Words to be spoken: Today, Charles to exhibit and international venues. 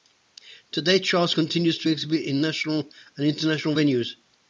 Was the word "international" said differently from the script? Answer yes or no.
no